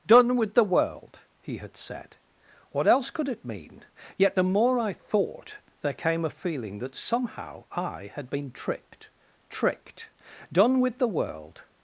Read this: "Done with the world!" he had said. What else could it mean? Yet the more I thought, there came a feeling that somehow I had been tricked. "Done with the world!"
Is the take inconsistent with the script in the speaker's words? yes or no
yes